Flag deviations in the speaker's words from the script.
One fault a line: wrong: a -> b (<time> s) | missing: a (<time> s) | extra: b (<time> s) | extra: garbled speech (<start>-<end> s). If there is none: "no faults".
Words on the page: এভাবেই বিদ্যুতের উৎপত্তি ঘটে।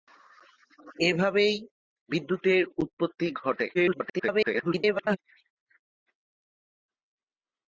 extra: garbled speech (3.7-5.2 s)